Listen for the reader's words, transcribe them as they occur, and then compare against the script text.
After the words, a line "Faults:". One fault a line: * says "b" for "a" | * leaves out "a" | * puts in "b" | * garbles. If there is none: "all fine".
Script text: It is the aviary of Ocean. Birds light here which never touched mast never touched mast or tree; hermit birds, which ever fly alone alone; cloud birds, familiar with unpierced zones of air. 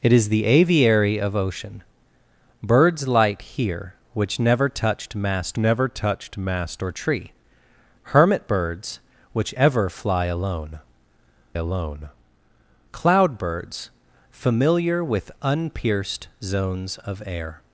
It is the aviary of Ocean. Birds light here which never touched mast never touched mast or tree; hermit birds, which ever fly alone alone; cloud birds, familiar with unpierced zones of air.
Faults:
all fine